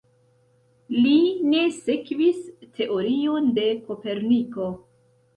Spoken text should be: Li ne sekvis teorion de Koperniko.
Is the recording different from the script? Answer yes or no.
no